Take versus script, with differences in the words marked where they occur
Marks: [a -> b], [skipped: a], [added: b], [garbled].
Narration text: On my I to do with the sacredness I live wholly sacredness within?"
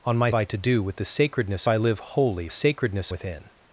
On my I to do with the sacredness I live wholly sacredness within?"